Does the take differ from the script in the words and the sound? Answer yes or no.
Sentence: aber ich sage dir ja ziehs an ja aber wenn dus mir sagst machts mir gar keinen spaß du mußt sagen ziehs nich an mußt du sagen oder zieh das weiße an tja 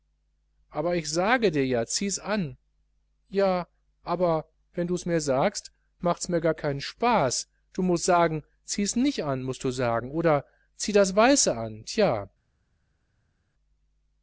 no